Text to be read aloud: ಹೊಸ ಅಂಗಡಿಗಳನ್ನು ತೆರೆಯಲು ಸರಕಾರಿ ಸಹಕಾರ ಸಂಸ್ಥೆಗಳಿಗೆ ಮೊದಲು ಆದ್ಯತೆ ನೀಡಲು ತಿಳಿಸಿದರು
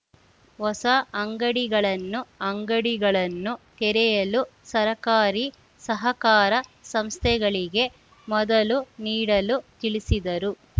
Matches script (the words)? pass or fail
fail